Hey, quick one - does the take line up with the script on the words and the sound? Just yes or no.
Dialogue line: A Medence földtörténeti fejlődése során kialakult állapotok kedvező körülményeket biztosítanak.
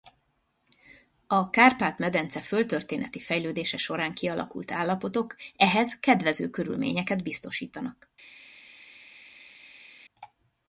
no